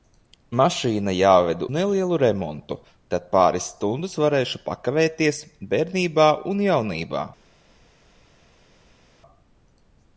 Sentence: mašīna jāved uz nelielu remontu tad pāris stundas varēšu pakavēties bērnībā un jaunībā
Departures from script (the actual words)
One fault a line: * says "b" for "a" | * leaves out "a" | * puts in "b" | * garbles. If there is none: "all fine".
* leaves out "uz"